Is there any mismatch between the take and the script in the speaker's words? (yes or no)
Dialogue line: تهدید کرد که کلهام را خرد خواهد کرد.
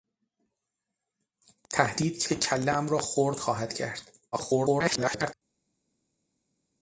yes